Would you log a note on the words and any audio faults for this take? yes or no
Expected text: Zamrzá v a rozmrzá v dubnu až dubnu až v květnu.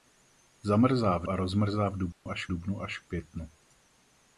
yes